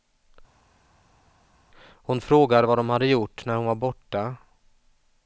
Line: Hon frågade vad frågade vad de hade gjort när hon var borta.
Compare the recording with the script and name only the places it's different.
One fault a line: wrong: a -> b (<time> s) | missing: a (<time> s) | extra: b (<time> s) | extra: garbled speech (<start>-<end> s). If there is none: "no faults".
missing: frågade vad (2.8 s)